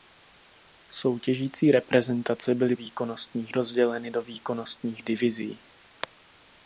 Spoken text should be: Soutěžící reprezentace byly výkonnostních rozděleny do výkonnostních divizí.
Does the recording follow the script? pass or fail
pass